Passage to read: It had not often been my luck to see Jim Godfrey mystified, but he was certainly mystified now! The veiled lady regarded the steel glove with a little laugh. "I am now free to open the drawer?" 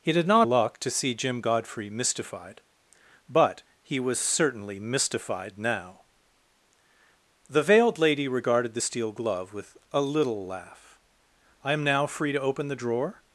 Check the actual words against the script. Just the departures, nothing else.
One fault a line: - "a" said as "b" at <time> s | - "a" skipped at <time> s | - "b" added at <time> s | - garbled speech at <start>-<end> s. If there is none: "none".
- "often been my" skipped at 0.5 s